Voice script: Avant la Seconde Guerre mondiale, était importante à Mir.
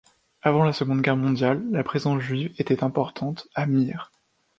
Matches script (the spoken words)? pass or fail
fail